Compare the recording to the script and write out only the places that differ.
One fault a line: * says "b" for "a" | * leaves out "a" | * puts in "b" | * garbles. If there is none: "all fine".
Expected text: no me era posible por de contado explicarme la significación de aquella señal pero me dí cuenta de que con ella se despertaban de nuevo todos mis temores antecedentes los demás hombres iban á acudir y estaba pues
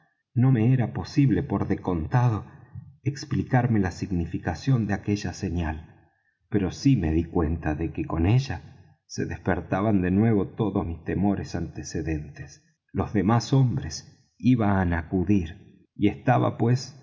* puts in "sí"